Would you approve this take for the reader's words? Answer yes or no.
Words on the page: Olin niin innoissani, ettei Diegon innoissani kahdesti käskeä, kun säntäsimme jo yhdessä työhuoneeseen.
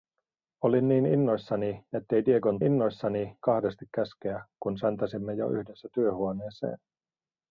yes